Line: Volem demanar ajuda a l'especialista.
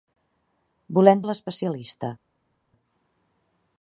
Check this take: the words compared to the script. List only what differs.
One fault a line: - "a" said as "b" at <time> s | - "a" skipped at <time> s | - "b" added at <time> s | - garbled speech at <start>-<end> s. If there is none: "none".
- "demanar ajuda" skipped at 1.2 s